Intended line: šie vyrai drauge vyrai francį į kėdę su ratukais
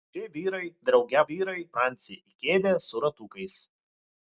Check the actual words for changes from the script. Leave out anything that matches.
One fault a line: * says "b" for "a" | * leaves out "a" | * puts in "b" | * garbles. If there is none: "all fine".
all fine